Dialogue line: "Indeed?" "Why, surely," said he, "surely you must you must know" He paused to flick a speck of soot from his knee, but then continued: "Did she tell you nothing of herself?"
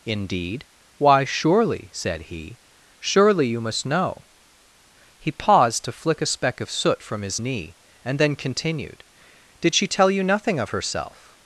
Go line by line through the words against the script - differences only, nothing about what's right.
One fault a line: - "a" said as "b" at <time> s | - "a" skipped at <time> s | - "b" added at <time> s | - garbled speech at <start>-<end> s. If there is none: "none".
- "you must" skipped at 3.9 s
- "but" said as "and" at 8.0 s